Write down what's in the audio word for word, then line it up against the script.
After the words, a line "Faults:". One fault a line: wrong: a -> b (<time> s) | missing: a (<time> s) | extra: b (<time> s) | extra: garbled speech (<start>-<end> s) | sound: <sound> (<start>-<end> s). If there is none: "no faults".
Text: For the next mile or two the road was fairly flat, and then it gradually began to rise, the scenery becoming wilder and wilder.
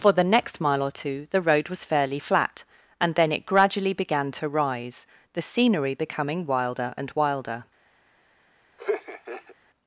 For the next mile or two the road was fairly flat, and then it gradually began to rise, the scenery becoming wilder and wilder.
Faults:
sound: laugh (8.8-9.6 s)